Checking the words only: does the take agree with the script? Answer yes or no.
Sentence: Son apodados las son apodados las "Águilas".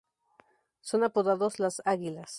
no